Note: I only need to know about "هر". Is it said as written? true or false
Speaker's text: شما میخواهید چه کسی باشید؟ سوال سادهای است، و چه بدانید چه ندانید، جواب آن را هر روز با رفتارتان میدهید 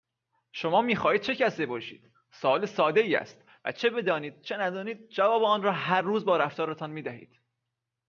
true